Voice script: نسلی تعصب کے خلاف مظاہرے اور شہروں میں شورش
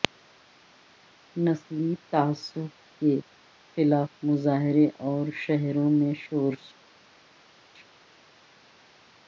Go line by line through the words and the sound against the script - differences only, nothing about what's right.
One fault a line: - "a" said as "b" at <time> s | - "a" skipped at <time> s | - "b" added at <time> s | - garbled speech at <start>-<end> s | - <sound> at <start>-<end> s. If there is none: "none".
none